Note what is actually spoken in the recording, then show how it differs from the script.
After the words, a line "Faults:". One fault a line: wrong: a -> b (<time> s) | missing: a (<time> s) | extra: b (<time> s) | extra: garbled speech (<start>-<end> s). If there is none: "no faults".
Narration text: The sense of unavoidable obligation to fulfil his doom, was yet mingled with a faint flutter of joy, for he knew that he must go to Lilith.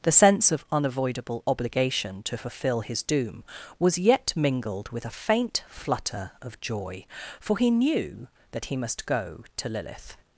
The sense of unavoidable obligation to fulfil his doom, was yet mingled with a faint flutter of joy, for he knew that he must go to Lilith.
Faults:
no faults